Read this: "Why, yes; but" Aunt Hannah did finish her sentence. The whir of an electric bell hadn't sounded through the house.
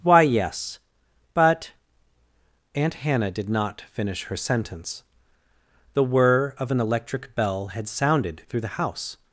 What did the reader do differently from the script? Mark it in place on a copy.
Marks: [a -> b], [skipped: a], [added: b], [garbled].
"Why, yes; but" Aunt Hannah did [added: not] finish her sentence. The whir of an electric bell [hadn't -> had] sounded through the house.